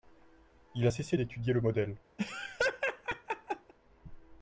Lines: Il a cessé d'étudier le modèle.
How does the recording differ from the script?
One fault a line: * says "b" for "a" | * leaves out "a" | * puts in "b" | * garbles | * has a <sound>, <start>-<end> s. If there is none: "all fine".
* has a laugh, 2.2-3.7 s